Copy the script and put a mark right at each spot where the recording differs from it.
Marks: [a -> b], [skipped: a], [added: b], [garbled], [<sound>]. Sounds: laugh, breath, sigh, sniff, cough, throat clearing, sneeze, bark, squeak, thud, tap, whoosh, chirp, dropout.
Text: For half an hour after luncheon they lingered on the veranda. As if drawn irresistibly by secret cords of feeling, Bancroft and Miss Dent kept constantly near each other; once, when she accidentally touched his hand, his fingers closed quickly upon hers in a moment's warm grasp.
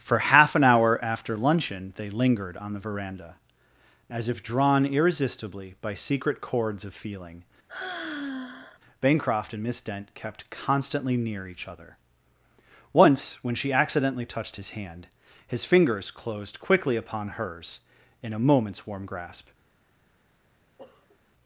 For half an hour after luncheon they lingered on the veranda. As if drawn irresistibly by secret cords of feeling, [sigh] Bancroft and Miss Dent kept constantly near each other; once, when she accidentally touched his hand, his fingers closed quickly upon hers in a moment's warm grasp. [sniff]